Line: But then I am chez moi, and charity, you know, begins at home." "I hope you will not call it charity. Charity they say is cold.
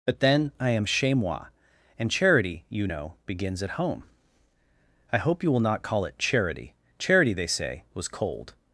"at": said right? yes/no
yes